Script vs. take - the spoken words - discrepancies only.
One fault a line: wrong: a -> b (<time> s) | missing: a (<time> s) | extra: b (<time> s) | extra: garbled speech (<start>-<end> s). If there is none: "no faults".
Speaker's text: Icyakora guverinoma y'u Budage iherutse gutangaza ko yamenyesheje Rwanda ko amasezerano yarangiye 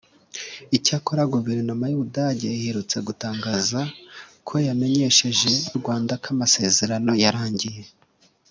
no faults